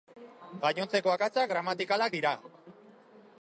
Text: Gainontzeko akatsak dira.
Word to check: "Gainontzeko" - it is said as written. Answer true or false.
true